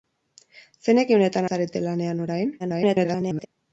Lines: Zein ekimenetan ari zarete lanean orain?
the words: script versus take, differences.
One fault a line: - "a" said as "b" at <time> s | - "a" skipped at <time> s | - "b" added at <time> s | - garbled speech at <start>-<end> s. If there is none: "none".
- "ari" skipped at 1.5 s
- garbled speech at 2.6-3.5 s